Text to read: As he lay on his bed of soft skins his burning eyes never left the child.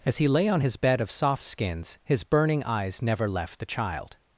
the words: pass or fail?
pass